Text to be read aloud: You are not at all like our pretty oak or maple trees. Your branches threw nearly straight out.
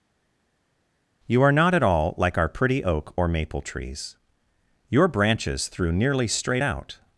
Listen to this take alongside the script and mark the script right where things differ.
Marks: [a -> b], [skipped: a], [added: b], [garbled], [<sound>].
You are not at all like our pretty oak or maple trees. Your branches threw nearly straight out.